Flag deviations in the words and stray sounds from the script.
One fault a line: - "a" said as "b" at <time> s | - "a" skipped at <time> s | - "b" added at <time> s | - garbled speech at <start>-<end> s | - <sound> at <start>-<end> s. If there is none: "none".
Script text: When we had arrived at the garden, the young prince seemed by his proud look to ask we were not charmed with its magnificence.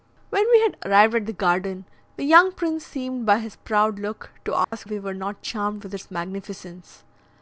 - dropout at 4.6-4.7 s